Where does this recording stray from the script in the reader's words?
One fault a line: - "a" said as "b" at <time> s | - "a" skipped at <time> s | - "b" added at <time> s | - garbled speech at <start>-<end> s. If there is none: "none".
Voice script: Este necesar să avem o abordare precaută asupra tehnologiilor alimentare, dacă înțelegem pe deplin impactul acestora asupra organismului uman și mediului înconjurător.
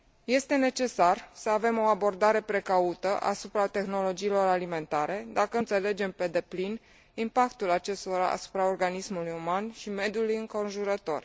none